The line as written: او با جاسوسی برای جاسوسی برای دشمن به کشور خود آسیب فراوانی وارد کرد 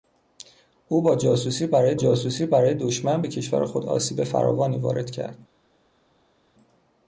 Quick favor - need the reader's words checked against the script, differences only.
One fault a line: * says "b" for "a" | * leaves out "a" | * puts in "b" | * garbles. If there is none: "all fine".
all fine